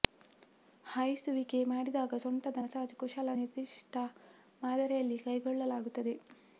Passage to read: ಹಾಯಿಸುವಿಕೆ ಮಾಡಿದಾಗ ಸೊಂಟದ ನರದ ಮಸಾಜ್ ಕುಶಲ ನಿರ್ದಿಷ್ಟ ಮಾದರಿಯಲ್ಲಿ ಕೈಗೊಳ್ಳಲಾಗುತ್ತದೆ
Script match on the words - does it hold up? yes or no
no